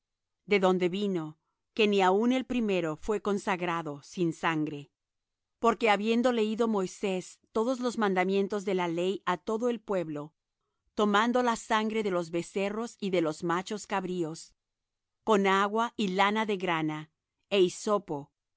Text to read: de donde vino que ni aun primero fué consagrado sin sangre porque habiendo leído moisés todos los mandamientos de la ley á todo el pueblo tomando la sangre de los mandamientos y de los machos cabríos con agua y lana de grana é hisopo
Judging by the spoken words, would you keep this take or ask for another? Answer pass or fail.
fail